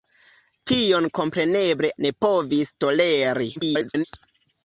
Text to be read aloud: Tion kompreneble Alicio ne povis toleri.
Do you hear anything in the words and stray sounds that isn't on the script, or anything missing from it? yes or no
yes